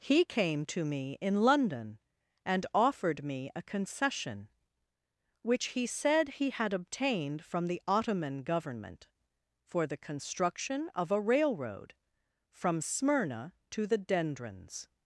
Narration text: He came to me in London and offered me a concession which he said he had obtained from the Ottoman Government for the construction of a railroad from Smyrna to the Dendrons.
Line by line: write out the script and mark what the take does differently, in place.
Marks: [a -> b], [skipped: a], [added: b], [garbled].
He came to me in London and offered me a concession which he said he had obtained from the Ottoman Government for the construction of a railroad from Smyrna to the Dendrons.